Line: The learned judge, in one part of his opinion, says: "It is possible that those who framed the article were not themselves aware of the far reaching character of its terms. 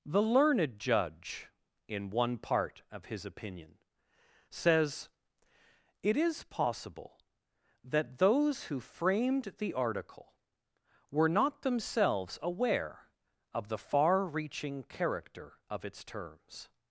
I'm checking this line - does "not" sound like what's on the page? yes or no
yes